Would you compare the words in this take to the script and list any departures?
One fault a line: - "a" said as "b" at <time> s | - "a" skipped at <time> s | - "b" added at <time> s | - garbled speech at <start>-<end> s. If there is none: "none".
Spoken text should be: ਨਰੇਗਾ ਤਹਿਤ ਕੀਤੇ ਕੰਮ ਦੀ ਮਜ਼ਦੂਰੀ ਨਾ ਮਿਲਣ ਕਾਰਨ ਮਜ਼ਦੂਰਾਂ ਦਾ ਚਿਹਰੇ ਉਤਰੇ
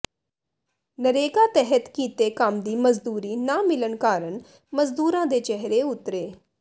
- "ਦਾ" said as "ਦੇ" at 5.2 s